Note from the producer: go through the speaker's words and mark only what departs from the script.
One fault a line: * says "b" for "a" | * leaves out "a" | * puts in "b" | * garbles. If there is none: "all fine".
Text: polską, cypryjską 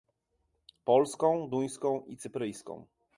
* puts in "duńską i"